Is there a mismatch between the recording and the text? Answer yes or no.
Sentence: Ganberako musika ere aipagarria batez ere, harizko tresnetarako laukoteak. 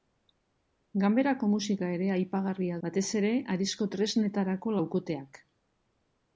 no